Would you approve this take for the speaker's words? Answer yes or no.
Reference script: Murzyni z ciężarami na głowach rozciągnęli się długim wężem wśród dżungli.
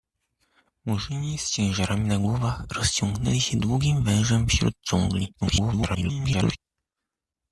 no